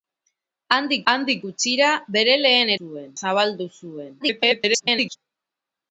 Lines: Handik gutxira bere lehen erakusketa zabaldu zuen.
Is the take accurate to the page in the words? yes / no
no